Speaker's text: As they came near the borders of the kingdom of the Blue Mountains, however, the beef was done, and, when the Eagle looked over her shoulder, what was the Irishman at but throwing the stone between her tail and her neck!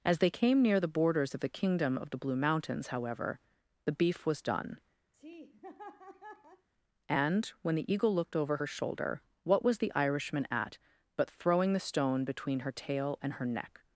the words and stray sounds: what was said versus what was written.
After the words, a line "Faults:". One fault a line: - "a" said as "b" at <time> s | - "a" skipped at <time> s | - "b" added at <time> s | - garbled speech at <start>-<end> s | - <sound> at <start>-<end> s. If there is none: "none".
As they came near the borders of the kingdom of the Blue Mountains, however, the beef was done, and, when the Eagle looked over her shoulder, what was the Irishman at but throwing the stone between her tail and her neck!
Faults:
- laugh at 5.1-6.7 s